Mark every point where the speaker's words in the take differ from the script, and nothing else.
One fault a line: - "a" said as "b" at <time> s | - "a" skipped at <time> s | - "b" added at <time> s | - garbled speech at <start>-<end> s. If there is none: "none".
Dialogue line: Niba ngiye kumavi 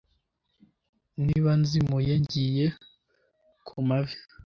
- "nzimuye" added at 1.6 s